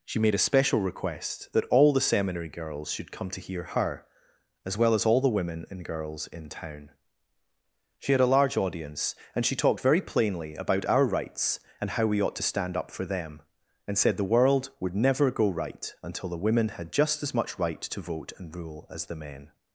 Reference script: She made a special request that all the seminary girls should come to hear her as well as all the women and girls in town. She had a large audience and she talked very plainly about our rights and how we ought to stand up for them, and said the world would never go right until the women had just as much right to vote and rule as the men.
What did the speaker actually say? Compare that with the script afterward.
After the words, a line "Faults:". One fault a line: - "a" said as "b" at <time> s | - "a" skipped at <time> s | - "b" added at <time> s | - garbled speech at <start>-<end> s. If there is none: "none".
She made a special request that all the seminary girls should come to hear her as well as all the women and girls in town. She had a large audience and she talked very plainly about our rights and how we ought to stand up for them, and said the world would never go right until the women had just as much right to vote and rule as the men.
Faults:
none